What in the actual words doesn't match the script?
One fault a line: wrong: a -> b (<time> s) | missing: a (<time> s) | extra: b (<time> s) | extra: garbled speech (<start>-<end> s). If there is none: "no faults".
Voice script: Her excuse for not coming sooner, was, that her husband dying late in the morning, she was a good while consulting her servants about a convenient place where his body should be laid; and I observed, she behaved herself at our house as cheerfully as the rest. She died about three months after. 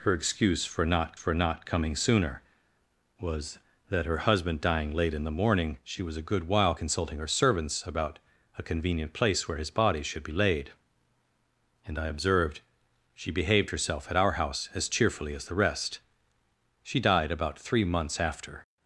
extra: for not (1.1 s)